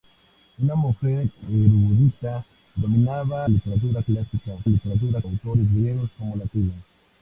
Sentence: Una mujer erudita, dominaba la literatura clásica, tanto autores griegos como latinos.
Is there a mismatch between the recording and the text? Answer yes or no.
yes